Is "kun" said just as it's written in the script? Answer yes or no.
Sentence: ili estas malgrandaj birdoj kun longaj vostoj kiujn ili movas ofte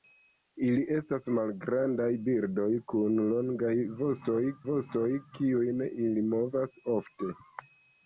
yes